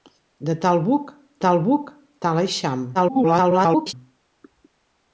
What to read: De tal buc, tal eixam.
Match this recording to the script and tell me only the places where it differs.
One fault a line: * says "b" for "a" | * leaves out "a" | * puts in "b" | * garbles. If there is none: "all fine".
* puts in "buc tal"
* garbles